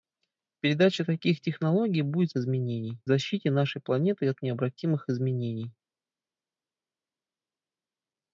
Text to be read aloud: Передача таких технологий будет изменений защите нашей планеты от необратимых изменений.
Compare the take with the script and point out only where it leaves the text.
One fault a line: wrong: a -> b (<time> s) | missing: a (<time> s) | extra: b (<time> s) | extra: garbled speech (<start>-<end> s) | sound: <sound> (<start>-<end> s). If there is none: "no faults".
no faults